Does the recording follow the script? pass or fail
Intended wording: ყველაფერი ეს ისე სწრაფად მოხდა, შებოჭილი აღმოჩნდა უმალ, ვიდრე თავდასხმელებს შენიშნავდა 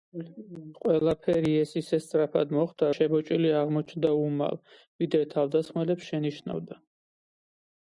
pass